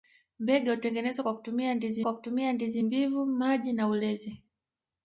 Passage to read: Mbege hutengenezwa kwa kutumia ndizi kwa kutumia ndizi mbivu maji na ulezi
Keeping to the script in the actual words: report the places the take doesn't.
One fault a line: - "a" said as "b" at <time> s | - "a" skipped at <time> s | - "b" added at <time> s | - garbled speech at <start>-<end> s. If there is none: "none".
none